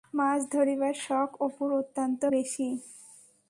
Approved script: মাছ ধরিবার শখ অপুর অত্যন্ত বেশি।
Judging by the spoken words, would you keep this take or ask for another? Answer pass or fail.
pass